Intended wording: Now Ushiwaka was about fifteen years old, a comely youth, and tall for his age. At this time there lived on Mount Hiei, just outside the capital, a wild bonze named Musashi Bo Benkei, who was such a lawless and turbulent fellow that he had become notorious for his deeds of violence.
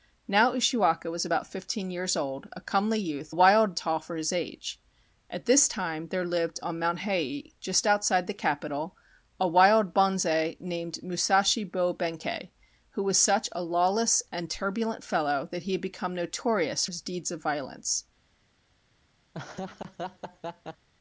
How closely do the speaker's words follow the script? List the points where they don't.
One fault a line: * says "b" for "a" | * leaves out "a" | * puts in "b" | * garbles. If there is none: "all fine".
* says "wild" for "and"
* leaves out "for"